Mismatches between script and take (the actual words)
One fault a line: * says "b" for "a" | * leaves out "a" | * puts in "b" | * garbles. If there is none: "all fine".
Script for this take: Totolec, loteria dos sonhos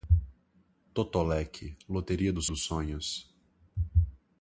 * puts in "dos"